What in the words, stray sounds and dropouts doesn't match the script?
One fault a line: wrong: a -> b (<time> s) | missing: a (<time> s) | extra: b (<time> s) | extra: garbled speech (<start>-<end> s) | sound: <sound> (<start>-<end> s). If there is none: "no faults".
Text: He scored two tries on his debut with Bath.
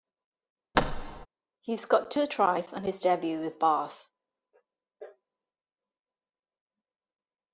sound: thud (0.7-1.3 s)